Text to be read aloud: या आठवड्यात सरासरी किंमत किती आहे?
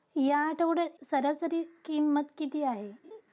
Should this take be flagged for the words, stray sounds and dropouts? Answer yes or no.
yes